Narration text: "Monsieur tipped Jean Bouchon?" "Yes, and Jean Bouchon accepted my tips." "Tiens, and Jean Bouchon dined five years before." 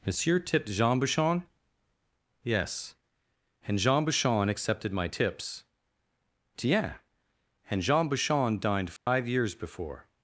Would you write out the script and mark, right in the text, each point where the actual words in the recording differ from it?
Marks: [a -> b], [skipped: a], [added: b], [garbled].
"Monsieur tipped Jean Bouchon?" "Yes, and Jean Bouchon accepted my tips." "Tiens, and Jean Bouchon dined five years before."